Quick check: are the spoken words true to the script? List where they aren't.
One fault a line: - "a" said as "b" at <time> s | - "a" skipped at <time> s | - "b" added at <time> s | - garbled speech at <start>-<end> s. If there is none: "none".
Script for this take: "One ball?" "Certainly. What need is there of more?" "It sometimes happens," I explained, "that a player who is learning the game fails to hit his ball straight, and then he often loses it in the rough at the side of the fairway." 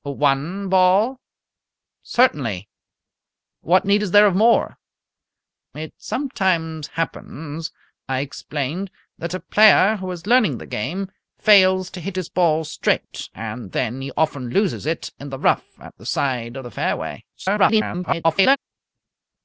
- garbled speech at 17.3-18.6 s